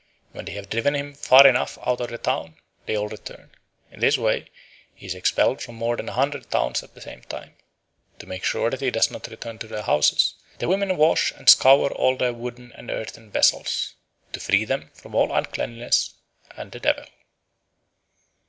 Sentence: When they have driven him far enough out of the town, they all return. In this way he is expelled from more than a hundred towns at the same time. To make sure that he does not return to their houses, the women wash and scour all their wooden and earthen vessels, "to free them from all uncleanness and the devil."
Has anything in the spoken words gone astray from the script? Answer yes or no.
no